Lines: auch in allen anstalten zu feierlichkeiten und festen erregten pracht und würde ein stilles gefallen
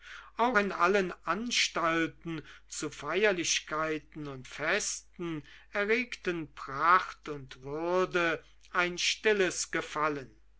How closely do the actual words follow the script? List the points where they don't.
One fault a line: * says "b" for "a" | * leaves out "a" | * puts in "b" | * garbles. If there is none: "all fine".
all fine